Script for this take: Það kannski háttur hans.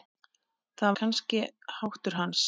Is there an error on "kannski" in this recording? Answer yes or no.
no